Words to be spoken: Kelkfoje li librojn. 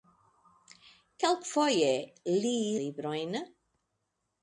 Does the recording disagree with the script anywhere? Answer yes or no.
no